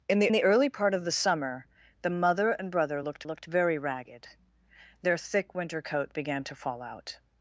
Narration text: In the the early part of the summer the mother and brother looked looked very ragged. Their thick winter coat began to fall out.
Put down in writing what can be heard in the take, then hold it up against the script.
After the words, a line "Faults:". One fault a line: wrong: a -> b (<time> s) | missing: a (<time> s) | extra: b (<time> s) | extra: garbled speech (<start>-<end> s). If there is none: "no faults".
In the the early part of the summer the mother and brother looked looked very ragged. Their thick winter coat began to fall out.
Faults:
no faults